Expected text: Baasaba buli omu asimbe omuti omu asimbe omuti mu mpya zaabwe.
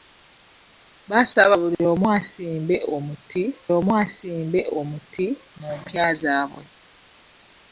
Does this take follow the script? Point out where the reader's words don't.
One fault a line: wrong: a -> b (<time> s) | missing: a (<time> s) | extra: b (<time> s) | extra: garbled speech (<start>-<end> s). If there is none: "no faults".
no faults